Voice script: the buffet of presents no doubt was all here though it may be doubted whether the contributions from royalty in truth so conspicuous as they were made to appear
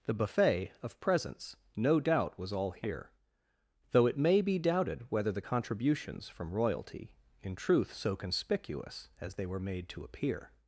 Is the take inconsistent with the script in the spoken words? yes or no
no